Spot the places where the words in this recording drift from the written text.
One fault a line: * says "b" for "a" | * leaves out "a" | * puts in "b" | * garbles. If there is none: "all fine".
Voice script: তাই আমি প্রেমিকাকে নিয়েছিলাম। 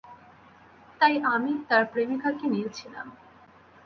* puts in "তার"